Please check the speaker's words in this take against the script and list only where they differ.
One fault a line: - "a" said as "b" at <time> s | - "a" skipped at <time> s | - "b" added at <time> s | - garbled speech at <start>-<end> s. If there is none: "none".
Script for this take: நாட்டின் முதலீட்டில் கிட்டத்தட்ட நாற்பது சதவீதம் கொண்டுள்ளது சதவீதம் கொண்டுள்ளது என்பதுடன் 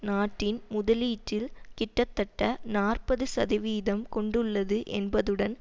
- "சதவீதம் கொண்டுள்ளது" skipped at 4.8 s